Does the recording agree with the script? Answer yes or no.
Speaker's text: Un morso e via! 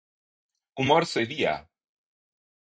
yes